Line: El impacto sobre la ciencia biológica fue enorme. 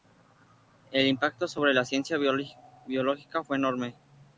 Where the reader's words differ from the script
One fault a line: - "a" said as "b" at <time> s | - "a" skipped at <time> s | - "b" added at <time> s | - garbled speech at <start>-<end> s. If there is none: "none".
none